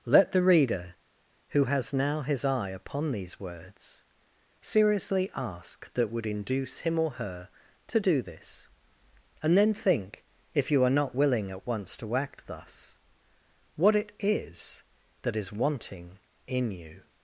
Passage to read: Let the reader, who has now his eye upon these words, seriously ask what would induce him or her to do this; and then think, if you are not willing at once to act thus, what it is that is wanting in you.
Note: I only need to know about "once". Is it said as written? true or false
true